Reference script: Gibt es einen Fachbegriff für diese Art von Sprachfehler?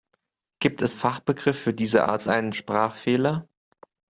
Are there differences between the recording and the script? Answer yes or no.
yes